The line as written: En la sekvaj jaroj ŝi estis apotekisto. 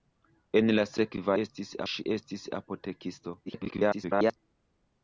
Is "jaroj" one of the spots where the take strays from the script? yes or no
yes